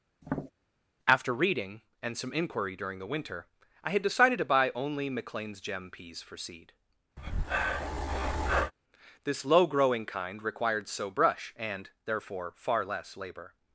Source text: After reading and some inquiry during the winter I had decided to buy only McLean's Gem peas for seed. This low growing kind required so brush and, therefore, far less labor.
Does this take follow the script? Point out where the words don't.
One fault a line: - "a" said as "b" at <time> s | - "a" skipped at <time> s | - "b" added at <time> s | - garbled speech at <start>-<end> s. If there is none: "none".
none